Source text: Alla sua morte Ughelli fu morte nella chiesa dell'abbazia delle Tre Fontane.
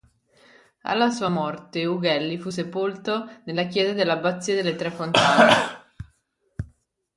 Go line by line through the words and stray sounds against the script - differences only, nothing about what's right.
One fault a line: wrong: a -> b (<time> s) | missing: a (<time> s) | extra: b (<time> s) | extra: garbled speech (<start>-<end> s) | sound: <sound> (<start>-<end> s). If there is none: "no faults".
wrong: morte -> sepolto (2.5 s)